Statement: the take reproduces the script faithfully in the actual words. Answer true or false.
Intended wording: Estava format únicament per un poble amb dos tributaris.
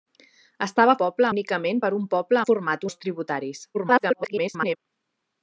false